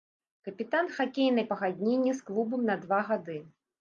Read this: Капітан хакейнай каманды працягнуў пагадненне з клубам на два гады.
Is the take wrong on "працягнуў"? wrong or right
wrong